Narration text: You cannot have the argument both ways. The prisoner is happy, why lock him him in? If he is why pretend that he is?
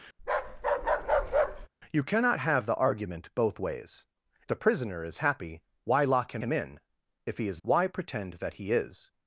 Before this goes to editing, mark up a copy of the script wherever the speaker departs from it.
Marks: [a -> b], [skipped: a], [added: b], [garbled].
You cannot have the argument both ways. The prisoner is happy, why lock him him in? If he is why pretend that he is?